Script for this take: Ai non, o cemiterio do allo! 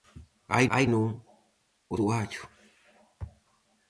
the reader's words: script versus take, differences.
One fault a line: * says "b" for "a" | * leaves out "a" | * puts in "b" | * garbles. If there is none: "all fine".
* puts in "ai"
* leaves out "cemiterio"